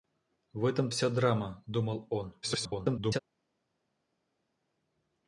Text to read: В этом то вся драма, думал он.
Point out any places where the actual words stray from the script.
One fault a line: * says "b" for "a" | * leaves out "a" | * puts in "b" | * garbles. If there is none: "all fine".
* leaves out "то"
* garbles